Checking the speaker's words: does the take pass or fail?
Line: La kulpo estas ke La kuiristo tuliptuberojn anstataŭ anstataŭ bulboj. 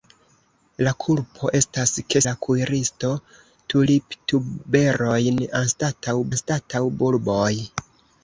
pass